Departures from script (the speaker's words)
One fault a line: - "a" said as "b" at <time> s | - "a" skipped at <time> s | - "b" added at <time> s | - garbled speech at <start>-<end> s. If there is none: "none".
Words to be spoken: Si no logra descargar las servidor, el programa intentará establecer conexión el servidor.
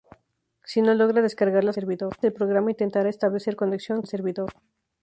none